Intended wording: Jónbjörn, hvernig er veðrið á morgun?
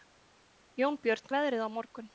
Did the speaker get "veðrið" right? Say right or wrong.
right